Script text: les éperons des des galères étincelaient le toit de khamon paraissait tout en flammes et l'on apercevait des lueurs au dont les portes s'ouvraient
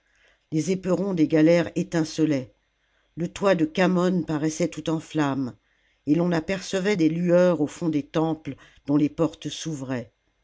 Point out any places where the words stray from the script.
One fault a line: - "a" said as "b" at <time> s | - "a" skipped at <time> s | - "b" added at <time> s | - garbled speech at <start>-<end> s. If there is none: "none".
- "des" skipped at 1.3 s
- "fond des temples" added at 7.7 s